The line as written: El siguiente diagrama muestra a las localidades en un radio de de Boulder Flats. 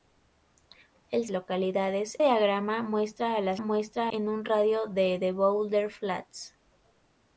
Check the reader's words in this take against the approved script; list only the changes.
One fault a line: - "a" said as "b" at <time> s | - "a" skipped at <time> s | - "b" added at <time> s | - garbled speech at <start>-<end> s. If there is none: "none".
- "siguiente" said as "localidades" at 1.3 s
- "localidades" said as "muestra" at 3.6 s